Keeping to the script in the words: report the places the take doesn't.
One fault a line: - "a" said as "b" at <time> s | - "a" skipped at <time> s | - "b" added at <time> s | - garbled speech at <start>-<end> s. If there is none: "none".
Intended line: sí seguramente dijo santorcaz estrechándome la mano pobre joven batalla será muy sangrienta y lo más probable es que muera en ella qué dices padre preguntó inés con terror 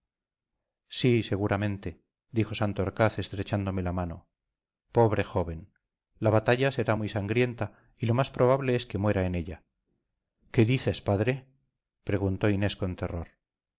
- "la" added at 6.2 s